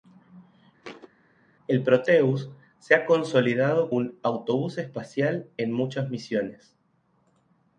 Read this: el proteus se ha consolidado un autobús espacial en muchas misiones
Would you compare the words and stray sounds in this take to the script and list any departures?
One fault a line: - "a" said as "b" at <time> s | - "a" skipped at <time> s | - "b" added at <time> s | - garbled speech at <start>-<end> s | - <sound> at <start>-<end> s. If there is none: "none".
- thud at 0.8-1.1 s